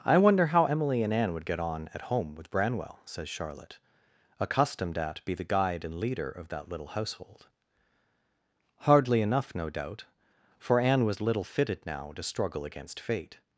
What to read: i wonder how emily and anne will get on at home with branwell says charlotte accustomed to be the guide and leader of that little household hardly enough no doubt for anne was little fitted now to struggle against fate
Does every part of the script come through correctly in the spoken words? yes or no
no